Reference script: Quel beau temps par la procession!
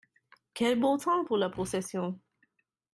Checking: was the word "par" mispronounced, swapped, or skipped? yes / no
yes